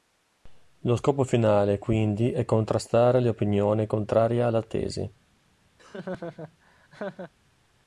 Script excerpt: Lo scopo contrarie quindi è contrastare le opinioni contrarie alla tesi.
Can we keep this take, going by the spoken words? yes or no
no